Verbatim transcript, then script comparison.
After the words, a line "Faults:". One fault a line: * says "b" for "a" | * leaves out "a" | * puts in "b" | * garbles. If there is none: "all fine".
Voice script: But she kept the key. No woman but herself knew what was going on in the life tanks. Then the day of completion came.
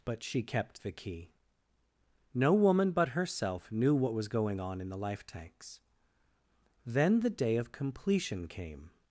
But she kept the key. No woman but herself knew what was going on in the life tanks. Then the day of completion came.
Faults:
all fine